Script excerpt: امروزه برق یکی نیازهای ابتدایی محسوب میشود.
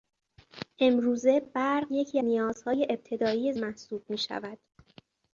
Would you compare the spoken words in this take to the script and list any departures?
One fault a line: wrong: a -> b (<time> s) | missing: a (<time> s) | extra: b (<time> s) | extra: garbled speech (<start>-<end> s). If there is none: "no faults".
no faults